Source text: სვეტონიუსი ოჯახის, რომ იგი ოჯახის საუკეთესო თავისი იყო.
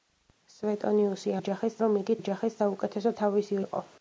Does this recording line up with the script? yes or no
yes